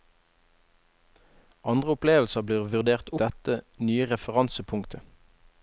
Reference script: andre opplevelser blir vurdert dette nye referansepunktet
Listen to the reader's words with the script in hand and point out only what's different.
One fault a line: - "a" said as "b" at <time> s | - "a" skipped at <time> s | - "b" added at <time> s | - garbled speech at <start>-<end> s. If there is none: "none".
none